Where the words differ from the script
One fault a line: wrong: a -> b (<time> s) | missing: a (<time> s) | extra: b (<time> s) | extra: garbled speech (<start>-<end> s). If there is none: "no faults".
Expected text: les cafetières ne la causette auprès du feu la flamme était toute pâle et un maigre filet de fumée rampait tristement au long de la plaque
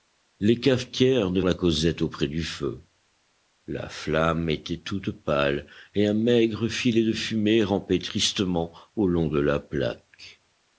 no faults